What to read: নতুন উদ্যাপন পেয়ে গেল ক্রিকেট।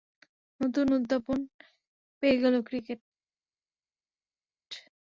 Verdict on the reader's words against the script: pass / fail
pass